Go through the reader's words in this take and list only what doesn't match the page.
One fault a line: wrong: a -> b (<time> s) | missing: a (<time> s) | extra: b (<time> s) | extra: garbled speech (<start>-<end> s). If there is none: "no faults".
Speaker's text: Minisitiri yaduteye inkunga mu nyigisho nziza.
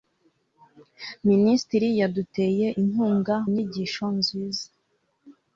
missing: mu (3.4 s)